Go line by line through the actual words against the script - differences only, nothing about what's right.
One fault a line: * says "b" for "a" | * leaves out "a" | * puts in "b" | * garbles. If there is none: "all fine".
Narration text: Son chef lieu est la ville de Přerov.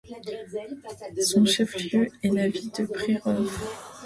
all fine